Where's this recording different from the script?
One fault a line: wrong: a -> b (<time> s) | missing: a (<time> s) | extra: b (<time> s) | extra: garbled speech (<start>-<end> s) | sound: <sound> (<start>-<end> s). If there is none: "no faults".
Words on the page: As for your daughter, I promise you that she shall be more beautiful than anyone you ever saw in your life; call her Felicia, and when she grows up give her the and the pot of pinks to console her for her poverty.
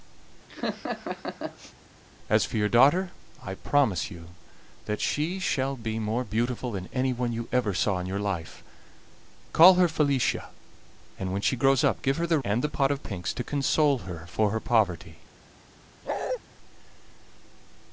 sound: laugh (0.5-1.7 s)
sound: bark (16.0-16.4 s)